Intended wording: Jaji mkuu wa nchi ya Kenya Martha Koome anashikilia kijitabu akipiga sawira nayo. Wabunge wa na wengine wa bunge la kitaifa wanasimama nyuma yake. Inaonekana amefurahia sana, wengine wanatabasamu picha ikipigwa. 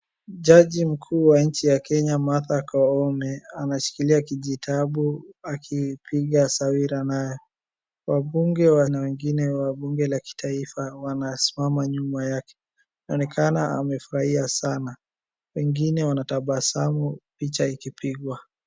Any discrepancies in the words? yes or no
no